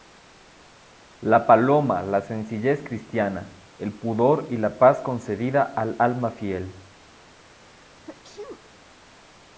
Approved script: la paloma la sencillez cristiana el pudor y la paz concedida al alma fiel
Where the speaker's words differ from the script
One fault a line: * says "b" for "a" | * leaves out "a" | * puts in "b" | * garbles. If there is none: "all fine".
all fine